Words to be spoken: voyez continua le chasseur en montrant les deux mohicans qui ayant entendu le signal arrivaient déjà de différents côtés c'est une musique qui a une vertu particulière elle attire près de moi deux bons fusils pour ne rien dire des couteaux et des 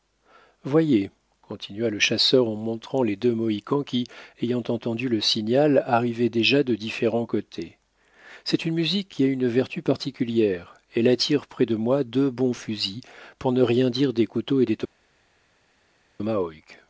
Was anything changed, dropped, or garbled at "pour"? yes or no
no